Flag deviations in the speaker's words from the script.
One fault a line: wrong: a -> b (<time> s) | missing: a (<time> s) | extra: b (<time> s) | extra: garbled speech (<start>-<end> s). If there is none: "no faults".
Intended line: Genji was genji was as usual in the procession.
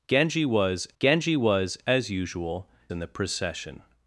no faults